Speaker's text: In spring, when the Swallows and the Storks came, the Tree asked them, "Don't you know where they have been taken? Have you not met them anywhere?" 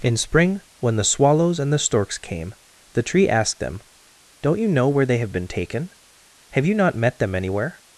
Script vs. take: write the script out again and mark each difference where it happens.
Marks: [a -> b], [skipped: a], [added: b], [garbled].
In spring, when the Swallows and the Storks came, the Tree asked them, "Don't you know where they have been taken? Have you not met them anywhere?"